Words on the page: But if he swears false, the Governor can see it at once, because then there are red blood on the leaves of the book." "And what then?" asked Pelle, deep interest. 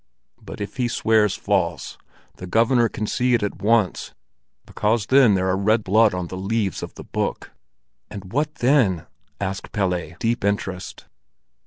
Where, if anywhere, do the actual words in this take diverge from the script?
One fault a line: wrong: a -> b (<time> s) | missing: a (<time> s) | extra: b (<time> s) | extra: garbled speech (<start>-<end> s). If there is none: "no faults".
no faults